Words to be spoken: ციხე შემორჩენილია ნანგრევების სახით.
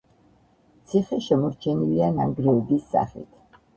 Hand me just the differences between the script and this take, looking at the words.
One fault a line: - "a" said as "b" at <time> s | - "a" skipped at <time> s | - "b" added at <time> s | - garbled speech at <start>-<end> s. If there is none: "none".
none